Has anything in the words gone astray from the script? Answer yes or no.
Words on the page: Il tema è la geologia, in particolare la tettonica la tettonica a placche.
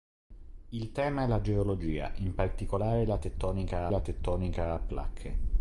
no